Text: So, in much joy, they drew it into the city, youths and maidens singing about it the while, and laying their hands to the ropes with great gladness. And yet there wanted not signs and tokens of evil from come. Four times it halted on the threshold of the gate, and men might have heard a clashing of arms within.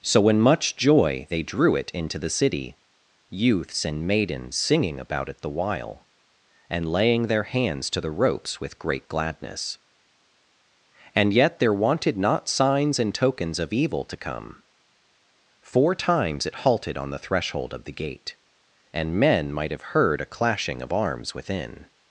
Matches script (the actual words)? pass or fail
fail